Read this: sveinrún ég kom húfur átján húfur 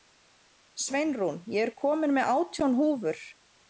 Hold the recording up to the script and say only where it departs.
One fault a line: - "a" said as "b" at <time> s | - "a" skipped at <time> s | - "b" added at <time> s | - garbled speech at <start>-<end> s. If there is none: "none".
- "húfur" said as "með" at 2.2 s